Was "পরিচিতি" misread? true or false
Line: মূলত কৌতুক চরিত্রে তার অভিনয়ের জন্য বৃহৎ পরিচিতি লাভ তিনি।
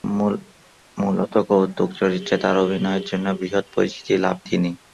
false